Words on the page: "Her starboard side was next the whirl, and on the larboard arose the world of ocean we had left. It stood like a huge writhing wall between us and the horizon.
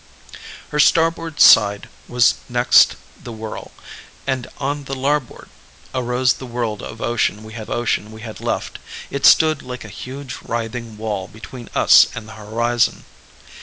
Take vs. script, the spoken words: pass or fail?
fail